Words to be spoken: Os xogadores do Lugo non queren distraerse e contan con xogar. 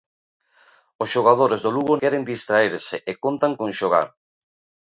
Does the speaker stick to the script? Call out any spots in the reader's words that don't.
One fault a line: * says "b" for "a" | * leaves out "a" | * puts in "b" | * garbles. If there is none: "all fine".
* leaves out "non"